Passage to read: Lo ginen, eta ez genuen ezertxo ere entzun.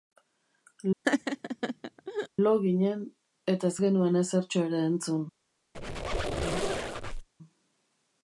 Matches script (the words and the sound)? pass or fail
fail